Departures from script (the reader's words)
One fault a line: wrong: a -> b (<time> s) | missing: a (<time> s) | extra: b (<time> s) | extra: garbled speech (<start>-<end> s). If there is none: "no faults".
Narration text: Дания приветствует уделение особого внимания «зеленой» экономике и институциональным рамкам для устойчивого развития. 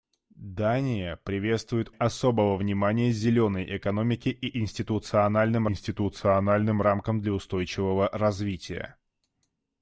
missing: уделение (1.9 s)
extra: институциональным (5.7 s)